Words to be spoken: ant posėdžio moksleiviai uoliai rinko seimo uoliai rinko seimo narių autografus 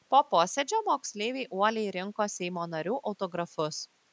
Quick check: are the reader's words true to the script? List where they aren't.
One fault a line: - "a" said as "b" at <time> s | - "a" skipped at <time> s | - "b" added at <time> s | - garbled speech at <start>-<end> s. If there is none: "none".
- "ant" said as "po" at 0.1 s
- "uoliai rinko seimo" skipped at 2.7 s